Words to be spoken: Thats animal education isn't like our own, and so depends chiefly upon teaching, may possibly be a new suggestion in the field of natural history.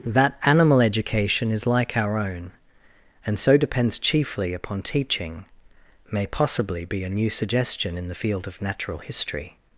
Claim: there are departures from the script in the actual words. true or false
true